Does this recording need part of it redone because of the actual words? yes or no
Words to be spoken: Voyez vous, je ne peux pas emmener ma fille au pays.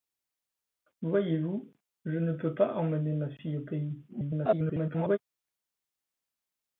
yes